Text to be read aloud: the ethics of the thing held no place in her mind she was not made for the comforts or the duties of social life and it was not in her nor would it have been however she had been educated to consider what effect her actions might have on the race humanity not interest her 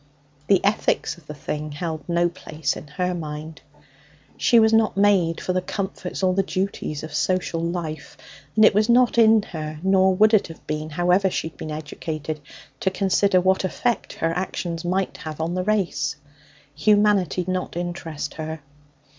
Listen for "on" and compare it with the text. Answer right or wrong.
right